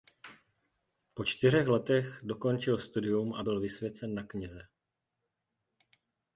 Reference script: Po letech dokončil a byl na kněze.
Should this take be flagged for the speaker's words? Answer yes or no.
yes